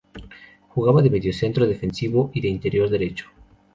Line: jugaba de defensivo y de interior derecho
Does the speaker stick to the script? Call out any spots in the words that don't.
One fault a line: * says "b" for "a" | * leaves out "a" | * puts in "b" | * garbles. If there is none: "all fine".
* puts in "mediocentro"